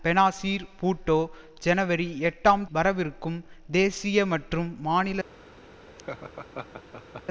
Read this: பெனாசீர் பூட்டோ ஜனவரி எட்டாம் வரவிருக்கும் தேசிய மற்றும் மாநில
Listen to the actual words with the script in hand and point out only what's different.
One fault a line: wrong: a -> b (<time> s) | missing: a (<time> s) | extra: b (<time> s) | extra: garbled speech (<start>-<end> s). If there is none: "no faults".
no faults